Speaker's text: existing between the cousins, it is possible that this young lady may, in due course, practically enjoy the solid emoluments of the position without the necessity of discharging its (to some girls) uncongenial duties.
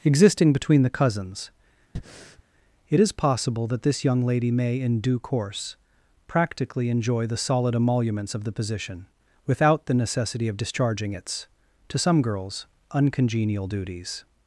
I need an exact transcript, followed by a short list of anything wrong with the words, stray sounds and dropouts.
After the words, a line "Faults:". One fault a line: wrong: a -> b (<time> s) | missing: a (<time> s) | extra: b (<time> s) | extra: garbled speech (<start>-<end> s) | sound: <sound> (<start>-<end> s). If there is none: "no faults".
existing between the cousins, it is possible that this young lady may, in due course, practically enjoy the solid emoluments of the position without the necessity of discharging its (to some girls) uncongenial duties.
Faults:
sound: breath (2.0-2.4 s)